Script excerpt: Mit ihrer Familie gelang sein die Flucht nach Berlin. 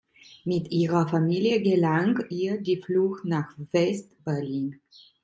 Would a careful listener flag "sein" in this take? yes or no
yes